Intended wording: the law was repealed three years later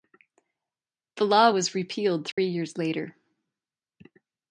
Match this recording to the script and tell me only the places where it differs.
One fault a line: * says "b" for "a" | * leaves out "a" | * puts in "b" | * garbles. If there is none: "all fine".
all fine